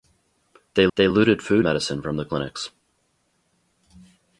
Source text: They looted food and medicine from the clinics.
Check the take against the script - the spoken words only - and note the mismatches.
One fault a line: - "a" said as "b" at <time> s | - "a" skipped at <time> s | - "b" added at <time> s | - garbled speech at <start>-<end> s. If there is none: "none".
- "they" added at 0.9 s
- "and" skipped at 1.7 s